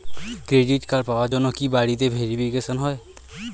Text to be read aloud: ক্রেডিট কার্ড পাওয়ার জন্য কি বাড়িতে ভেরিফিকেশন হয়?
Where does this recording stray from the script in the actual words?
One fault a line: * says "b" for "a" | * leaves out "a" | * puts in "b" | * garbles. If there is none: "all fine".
all fine